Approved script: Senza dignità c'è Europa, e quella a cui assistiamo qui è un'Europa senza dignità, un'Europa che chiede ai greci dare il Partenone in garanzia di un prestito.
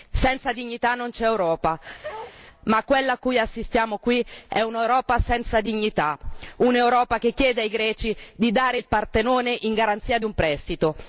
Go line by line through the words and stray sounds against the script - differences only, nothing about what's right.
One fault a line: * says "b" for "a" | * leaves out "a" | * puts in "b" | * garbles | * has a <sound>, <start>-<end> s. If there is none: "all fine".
* puts in "non"
* has a bark, 2.0-2.4 s
* says "ma" for "e"
* puts in "di"